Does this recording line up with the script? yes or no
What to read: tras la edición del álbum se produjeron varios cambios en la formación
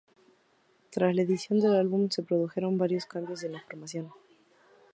yes